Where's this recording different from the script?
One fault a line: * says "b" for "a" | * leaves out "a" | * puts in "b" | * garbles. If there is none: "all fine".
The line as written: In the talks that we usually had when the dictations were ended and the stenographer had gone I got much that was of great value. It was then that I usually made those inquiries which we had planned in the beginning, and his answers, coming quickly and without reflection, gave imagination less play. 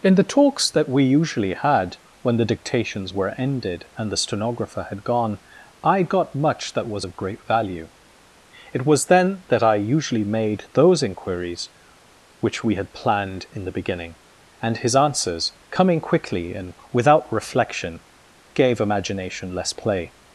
all fine